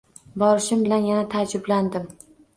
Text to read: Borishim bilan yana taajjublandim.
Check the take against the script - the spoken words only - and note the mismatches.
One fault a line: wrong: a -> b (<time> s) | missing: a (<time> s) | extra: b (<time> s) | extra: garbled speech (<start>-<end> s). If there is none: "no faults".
no faults